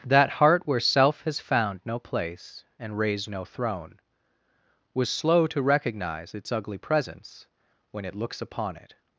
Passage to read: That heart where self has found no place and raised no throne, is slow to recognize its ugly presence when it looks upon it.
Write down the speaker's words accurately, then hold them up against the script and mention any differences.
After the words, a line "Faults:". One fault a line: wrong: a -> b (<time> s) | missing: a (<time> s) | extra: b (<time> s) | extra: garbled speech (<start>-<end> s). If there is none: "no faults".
That heart where self has found no place and raised no throne, was slow to recognize its ugly presence when it looks upon it.
Faults:
wrong: is -> was (4.9 s)